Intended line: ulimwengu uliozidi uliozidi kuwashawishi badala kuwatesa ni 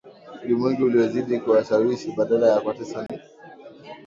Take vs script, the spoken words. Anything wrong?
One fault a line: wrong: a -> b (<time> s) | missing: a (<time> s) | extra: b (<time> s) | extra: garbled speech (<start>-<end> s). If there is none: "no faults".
missing: uliozidi (1.4 s)
extra: ya (2.5 s)